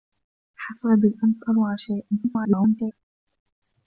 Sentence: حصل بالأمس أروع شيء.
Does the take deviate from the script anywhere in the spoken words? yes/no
yes